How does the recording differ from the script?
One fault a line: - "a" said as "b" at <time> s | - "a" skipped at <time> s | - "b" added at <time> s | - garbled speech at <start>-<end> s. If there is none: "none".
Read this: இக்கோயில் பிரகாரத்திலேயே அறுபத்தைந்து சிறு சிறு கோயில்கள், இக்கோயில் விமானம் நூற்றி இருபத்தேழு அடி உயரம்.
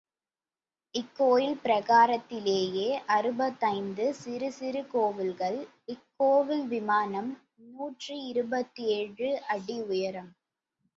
none